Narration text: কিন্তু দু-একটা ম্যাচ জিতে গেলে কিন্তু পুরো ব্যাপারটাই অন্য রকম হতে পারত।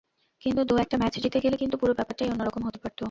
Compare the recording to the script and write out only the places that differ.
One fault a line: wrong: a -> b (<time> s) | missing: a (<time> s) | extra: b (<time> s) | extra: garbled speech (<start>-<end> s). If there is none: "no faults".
no faults